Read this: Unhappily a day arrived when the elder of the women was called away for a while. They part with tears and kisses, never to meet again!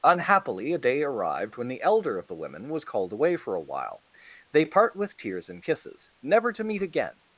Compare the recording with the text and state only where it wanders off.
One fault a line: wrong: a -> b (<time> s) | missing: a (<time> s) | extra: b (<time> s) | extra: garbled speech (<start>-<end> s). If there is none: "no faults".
no faults